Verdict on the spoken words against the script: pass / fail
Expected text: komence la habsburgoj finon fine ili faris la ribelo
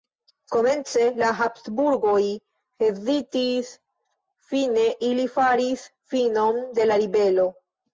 fail